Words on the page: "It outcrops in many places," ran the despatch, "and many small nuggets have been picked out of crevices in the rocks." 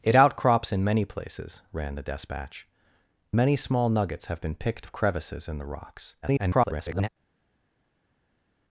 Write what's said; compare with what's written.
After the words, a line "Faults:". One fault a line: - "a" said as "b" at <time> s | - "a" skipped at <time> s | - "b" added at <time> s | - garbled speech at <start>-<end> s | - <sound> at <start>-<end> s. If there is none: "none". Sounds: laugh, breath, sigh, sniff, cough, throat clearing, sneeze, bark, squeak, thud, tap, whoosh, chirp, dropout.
"It outcrops in many places," ran the despatch, "many small nuggets have been picked of crevices in the rocks." [garbled]
Faults:
- "and" skipped at 2.7 s
- "out" skipped at 4.9 s
- garbled speech at 6.2-7.1 s